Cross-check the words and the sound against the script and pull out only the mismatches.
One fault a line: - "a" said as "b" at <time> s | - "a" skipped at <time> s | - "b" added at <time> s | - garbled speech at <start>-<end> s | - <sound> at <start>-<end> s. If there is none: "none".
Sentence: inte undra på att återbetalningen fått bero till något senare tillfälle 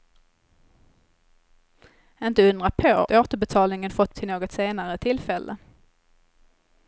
- "att" skipped at 3.1 s
- "bero" skipped at 4.2 s